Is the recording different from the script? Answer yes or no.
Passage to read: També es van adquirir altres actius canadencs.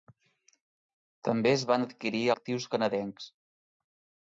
yes